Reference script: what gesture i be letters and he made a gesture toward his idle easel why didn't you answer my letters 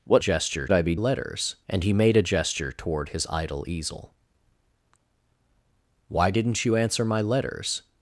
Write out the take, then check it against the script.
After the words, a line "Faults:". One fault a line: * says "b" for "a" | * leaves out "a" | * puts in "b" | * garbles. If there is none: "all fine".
what gesture i be letters and he made a gesture toward his idle easel why didn't you answer my letters
Faults:
all fine